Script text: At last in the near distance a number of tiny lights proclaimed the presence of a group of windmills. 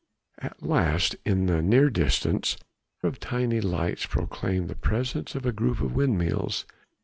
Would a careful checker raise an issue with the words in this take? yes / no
yes